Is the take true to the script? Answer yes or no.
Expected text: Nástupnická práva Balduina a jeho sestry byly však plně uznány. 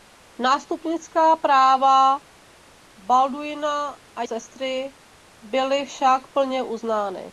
no